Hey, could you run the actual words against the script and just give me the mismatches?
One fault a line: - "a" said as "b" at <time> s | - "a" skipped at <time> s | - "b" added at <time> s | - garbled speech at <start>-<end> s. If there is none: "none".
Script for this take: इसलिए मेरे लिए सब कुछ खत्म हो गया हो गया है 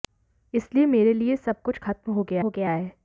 none